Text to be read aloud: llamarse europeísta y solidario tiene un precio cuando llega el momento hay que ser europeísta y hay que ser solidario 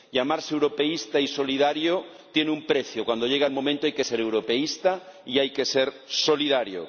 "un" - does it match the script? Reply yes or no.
yes